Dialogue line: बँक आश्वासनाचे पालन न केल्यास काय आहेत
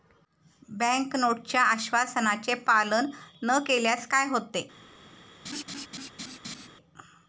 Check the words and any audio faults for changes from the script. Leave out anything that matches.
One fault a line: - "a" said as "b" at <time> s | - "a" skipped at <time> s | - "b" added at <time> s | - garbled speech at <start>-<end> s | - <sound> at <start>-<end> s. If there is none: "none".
- "नोटच्या" added at 1.1 s
- "आहेत" said as "होते" at 4.3 s
- laugh at 5.4-6.7 s